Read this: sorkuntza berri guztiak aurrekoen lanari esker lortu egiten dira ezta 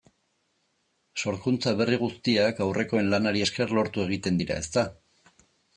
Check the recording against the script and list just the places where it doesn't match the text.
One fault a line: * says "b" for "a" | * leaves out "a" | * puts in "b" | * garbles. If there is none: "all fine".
all fine